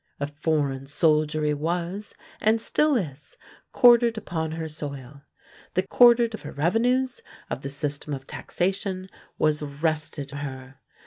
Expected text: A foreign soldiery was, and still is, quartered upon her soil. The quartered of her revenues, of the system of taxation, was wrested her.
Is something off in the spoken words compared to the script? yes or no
no